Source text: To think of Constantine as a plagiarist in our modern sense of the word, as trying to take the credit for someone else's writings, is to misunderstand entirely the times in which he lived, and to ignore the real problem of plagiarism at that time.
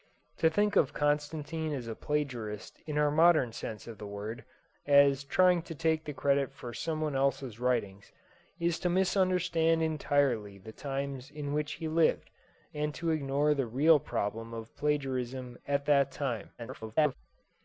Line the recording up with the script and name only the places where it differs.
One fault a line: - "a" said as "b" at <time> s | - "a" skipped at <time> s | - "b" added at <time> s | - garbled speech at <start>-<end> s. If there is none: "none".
- garbled speech at 16.6-17.1 s